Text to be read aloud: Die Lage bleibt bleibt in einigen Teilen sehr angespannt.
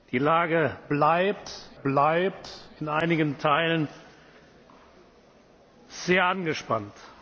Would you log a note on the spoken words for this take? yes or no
no